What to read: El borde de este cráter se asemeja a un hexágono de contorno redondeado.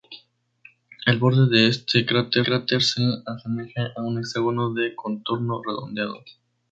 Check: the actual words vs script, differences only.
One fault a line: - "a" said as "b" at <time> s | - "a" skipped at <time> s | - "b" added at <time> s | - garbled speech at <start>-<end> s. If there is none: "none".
- "cráter" added at 2.4 s